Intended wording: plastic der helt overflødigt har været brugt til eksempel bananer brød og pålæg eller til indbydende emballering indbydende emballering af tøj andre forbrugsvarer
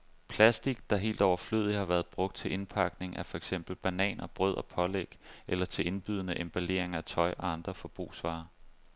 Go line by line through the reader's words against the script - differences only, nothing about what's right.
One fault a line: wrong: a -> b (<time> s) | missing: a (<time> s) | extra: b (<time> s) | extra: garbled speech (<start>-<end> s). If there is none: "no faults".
extra: indpakning af for (2.5 s)
missing: indbydende emballering (6.9 s)
extra: og (7.4 s)